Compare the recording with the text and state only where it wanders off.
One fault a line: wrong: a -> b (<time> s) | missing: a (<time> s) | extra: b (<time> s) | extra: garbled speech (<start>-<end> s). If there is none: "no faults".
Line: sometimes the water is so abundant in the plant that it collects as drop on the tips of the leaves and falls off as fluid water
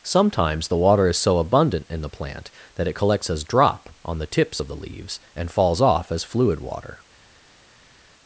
no faults